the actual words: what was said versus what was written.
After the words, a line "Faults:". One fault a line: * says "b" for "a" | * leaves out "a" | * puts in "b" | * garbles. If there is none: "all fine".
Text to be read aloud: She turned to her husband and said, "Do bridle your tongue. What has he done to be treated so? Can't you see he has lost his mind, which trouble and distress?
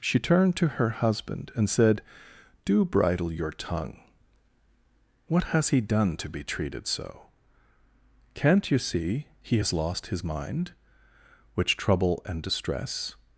She turned to her husband and said, "Do bridle your tongue. What has he done to be treated so? Can't you see he has lost his mind, which trouble and distress?
Faults:
all fine